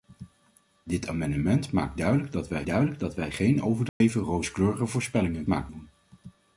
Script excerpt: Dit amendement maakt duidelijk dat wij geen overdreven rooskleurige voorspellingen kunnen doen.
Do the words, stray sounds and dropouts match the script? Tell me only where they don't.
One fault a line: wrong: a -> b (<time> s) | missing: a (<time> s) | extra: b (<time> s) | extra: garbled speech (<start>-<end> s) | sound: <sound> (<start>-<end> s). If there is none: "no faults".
extra: duidelijk dat wij (2.7 s)
sound: dropout (3.9-4.0 s)
wrong: kunnen -> maakt (5.5 s)